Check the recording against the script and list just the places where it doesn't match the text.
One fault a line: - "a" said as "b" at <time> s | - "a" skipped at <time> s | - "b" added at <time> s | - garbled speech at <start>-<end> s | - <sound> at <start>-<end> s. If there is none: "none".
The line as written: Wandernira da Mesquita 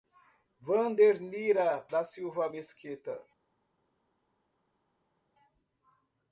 - "Silva" added at 2.0 s